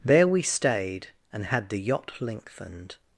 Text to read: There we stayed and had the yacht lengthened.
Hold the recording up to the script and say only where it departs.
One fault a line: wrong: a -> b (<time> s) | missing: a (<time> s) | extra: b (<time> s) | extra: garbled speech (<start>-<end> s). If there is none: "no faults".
no faults